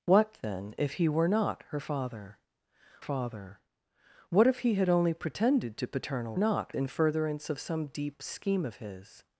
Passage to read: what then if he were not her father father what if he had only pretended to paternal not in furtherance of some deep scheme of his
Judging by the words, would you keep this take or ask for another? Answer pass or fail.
pass